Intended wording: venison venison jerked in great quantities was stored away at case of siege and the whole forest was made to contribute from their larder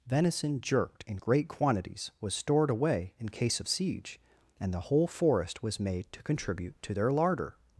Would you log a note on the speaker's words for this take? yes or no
yes